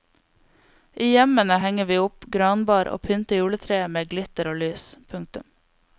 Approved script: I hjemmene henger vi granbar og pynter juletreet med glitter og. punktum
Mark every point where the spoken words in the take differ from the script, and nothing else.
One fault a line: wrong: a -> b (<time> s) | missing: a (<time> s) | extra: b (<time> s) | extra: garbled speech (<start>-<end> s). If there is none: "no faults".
extra: opp (2.0 s)
extra: lys (4.6 s)